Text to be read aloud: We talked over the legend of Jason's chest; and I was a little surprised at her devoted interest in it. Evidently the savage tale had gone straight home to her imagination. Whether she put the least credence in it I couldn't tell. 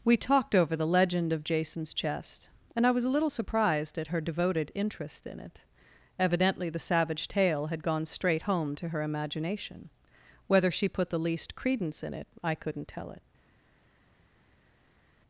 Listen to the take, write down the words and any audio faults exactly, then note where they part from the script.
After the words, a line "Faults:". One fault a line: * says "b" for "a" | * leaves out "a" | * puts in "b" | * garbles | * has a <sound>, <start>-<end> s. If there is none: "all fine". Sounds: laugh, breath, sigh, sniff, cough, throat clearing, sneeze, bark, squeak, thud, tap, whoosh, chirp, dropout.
We talked over the legend of Jason's chest; and I was a little surprised at her devoted interest in it. Evidently the savage tale had gone straight home to her imagination. Whether she put the least credence in it I couldn't tell. It
Faults:
* puts in "It"